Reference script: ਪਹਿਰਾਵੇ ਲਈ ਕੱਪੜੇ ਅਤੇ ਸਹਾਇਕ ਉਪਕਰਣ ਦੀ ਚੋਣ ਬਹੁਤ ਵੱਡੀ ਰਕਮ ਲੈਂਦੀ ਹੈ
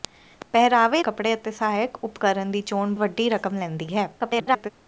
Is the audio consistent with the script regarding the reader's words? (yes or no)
no